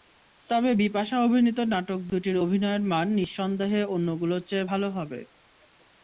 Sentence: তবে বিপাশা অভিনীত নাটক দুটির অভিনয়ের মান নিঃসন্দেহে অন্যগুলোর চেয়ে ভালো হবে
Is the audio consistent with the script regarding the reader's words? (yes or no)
yes